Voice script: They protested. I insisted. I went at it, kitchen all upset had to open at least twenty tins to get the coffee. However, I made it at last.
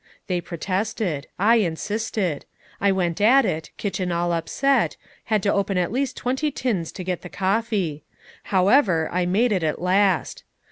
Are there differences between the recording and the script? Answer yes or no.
no